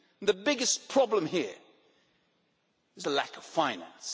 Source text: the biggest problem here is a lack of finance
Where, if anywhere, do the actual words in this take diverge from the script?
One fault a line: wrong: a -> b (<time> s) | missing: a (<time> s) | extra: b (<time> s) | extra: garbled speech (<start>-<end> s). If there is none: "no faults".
no faults